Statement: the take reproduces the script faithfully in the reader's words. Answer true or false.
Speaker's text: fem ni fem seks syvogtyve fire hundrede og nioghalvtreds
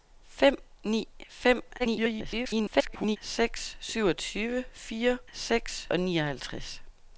false